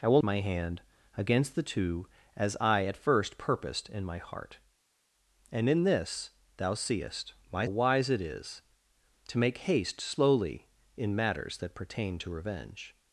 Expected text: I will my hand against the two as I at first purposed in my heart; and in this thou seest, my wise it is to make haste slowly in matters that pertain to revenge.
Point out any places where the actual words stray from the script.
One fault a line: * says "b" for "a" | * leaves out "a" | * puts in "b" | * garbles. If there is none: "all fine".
all fine